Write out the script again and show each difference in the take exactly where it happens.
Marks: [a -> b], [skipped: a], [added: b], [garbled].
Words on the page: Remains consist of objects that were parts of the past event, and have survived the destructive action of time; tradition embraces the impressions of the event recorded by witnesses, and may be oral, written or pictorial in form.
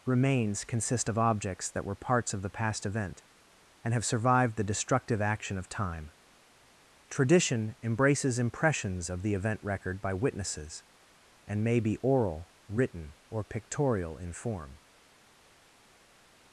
Remains consist of objects that were parts of the past event, and have survived the destructive action of time; tradition embraces [skipped: the] impressions of the event [recorded -> record] by witnesses, and may be oral, written or pictorial in form.